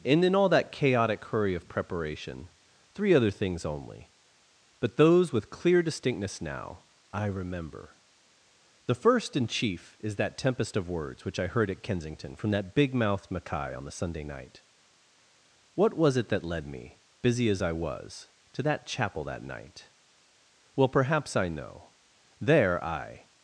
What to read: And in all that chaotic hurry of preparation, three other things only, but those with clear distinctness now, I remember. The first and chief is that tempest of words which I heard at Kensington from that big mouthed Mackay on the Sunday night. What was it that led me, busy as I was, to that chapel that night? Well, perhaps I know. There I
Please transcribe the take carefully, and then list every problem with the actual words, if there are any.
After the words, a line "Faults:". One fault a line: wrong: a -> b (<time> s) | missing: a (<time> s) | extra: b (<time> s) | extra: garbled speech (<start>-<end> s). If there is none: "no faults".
And in all that chaotic hurry of preparation, three other things only, but those with clear distinctness now, I remember. The first and chief is that tempest of words which I heard at Kensington from that big mouthed Mackay on the Sunday night. What was it that led me, busy as I was, to that chapel that night? Well, perhaps I know. There I
Faults:
no faults